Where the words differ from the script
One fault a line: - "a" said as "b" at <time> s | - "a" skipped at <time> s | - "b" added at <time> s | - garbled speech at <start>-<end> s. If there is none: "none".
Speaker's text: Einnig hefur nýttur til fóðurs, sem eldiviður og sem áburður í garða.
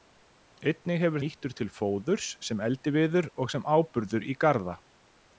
none